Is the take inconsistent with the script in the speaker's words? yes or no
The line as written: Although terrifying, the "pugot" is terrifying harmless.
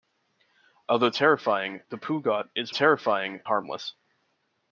no